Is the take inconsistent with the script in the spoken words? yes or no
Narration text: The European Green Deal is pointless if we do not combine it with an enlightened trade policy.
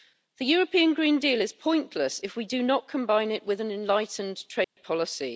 no